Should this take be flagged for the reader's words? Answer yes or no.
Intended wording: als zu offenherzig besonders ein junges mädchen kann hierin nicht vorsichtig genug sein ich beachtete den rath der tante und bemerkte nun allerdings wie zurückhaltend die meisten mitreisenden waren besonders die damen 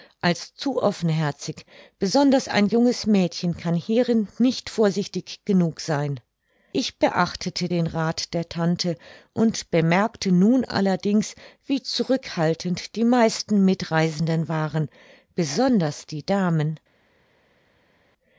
no